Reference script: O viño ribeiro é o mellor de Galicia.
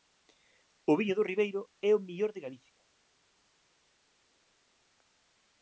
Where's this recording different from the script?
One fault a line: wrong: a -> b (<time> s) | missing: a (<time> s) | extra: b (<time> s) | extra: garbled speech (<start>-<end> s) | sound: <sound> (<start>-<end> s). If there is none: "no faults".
extra: do (1.2 s)